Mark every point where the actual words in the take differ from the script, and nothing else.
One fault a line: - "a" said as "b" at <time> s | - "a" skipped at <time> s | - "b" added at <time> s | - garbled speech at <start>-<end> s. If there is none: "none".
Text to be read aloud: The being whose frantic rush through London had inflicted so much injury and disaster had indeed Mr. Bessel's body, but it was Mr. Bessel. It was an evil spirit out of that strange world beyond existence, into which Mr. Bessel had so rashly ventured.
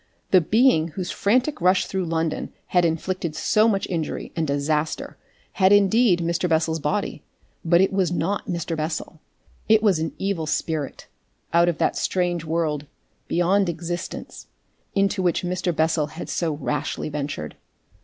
- "not" added at 8.1 s